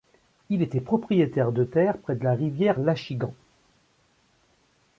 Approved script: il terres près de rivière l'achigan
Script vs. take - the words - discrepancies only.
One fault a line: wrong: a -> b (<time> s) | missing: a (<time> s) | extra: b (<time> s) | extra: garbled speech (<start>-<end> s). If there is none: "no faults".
extra: était propriétaire de (0.6 s)
extra: la (2.2 s)